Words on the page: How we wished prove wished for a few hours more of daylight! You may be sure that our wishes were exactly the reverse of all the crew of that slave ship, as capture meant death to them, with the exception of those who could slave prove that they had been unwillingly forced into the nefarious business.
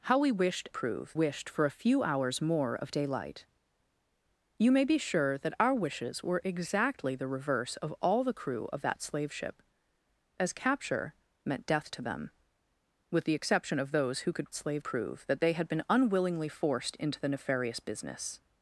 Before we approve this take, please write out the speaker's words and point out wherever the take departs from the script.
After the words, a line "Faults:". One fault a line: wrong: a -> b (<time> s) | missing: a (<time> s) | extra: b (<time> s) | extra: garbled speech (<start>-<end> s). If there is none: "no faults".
How we wished prove wished for a few hours more of daylight! You may be sure that our wishes were exactly the reverse of all the crew of that slave ship, as capture meant death to them, with the exception of those who could slave prove that they had been unwillingly forced into the nefarious business.
Faults:
no faults